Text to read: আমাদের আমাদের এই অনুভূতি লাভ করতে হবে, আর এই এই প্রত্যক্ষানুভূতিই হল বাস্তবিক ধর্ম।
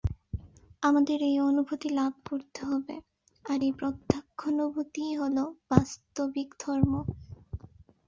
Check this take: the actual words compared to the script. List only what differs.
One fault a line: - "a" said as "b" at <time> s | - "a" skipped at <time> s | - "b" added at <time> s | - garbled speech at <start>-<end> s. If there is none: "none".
- "আমাদের" skipped at 1.2 s
- "এই" skipped at 3.7 s